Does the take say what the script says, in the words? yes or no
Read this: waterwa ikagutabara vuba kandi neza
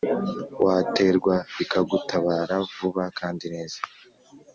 yes